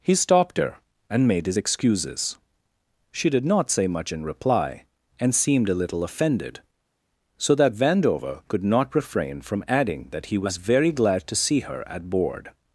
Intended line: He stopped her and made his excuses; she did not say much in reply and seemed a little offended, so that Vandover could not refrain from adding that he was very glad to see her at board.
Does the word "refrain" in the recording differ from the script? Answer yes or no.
no